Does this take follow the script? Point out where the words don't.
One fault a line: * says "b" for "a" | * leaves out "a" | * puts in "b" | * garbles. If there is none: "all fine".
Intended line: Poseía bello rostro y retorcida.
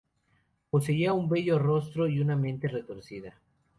* puts in "un"
* puts in "una mente"